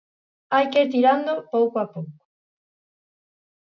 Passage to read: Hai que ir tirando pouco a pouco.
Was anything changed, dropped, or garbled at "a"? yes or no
no